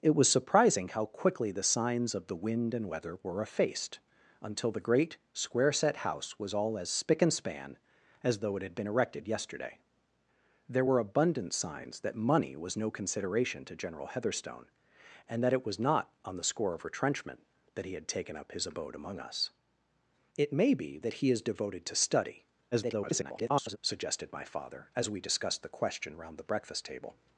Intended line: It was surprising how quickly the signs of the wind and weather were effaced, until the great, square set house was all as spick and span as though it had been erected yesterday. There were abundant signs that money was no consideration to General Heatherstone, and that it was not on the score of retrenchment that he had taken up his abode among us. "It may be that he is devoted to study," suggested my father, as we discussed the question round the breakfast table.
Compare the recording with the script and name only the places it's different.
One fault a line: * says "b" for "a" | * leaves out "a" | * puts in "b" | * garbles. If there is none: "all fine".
* garbles